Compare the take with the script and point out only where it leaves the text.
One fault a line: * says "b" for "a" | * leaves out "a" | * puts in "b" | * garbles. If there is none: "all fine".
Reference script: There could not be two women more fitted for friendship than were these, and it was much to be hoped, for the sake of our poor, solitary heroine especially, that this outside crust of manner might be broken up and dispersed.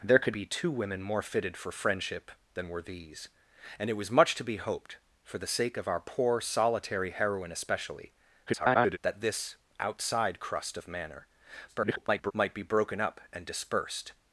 * leaves out "not"
* garbles
* garbles